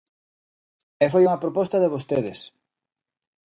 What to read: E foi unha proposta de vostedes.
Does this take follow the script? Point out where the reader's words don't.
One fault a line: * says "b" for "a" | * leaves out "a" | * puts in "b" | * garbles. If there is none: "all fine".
all fine